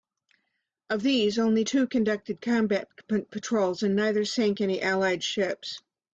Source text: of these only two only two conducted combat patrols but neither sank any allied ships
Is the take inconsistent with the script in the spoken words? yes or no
yes